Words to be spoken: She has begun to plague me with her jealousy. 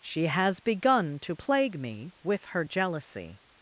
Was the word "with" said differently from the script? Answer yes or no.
no